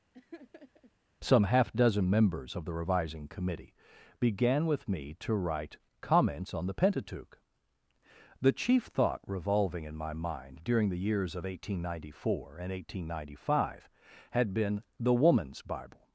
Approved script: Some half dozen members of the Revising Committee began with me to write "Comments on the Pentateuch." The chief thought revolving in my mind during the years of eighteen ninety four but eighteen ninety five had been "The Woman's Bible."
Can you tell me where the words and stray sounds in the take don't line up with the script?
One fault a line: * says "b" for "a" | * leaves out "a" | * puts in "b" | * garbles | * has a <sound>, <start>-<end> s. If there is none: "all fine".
* has a laugh, 0.1-0.9 s
* says "and" for "but"